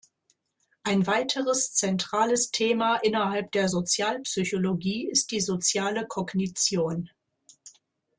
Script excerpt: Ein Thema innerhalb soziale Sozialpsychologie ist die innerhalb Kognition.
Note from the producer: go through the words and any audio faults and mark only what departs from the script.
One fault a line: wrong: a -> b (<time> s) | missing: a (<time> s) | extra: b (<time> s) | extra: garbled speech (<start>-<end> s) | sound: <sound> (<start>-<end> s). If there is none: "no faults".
extra: weiteres zentrales (1.1 s)
wrong: soziale -> der (3.5 s)
wrong: innerhalb -> soziale (5.4 s)